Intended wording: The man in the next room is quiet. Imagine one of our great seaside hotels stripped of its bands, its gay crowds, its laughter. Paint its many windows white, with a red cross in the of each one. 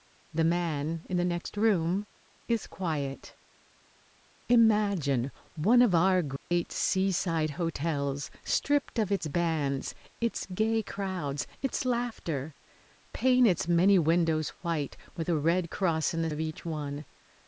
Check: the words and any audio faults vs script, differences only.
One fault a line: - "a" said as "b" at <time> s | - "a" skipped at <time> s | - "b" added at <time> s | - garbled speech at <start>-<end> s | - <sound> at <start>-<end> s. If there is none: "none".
- dropout at 6.4-6.5 s